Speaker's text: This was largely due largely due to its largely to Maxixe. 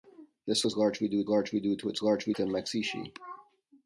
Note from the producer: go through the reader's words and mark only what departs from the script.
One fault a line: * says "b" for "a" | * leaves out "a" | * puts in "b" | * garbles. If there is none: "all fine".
all fine